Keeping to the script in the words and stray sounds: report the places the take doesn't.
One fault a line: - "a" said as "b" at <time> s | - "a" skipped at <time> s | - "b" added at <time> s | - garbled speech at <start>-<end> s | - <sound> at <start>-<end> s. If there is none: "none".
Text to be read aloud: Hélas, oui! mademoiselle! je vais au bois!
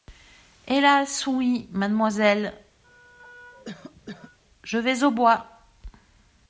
- cough at 2.8-4.4 s